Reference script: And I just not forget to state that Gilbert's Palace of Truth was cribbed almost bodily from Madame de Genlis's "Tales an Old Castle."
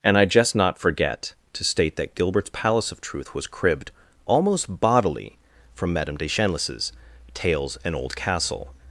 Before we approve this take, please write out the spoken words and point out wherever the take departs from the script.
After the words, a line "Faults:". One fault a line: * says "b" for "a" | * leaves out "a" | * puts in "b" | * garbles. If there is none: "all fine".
And I just not forget to state that Gilbert's Palace of Truth was cribbed almost bodily from Madame de Genlis's "Tales an Old Castle."
Faults:
all fine